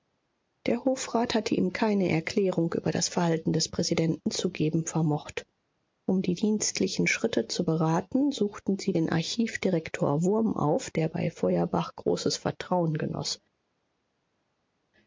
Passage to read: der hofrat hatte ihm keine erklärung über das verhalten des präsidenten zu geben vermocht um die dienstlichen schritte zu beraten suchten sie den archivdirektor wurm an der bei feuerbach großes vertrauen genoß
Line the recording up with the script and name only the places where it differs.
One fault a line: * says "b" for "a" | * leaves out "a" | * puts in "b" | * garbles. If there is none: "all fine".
* says "auf" for "an"